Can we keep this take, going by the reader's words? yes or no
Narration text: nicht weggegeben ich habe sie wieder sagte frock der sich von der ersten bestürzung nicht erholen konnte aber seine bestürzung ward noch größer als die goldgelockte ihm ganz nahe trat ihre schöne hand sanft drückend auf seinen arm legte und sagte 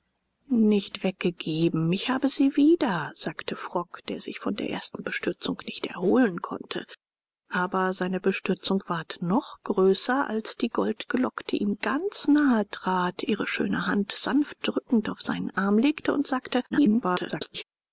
no